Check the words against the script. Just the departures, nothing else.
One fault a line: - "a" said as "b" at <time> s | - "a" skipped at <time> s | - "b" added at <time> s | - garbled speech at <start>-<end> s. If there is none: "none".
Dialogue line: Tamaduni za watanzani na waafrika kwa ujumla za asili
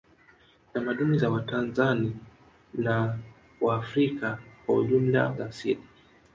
none